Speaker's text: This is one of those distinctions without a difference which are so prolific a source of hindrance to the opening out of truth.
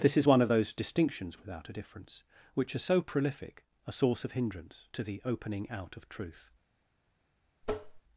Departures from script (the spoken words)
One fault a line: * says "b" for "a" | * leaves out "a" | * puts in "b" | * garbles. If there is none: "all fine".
all fine